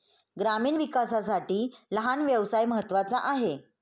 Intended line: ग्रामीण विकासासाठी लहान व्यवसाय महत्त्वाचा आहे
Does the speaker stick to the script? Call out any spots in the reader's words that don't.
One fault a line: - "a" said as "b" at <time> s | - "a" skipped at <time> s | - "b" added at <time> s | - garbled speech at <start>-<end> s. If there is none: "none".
none